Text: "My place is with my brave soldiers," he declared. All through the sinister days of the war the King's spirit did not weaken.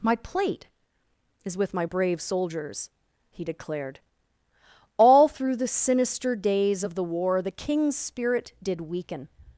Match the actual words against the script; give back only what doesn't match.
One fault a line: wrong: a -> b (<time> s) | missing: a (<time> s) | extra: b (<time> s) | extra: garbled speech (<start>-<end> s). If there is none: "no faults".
wrong: place -> plate (0.1 s)
missing: not (8.8 s)